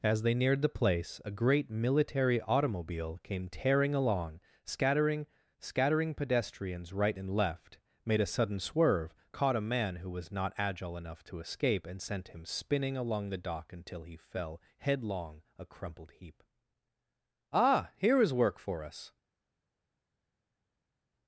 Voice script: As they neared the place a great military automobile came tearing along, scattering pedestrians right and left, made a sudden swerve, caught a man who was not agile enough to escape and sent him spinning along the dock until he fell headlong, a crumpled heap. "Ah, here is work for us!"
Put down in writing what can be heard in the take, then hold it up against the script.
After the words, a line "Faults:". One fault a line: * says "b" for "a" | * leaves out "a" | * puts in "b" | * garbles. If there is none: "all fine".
As they neared the place a great military automobile came tearing along, scattering scattering pedestrians right and left, made a sudden swerve, caught a man who was not agile enough to escape and sent him spinning along the dock until he fell headlong, a crumpled heap. "Ah, here is work for us!"
Faults:
* puts in "scattering"